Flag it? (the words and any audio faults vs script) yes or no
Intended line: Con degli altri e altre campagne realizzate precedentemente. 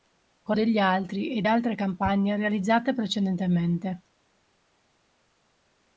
no